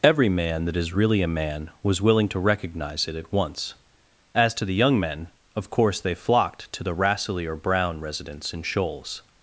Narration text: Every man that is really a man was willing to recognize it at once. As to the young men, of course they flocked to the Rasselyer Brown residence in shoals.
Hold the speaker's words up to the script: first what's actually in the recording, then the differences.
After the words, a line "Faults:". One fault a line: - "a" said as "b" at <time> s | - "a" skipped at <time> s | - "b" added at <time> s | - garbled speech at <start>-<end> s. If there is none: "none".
Every man that is really a man was willing to recognize it at once. As to the young men, of course they flocked to the Rasselyer Brown residence in shoals.
Faults:
none